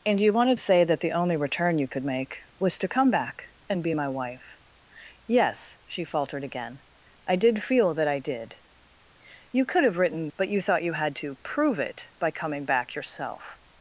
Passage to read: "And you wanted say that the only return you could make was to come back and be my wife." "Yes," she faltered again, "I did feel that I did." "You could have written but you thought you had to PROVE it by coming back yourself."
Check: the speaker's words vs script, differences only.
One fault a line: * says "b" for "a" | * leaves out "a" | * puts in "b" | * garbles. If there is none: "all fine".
all fine